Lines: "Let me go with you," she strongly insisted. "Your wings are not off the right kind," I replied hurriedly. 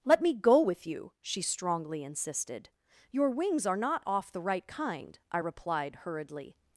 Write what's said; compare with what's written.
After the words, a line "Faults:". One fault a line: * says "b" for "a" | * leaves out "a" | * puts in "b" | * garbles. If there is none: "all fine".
"Let me go with you," she strongly insisted. "Your wings are not off the right kind," I replied hurriedly.
Faults:
all fine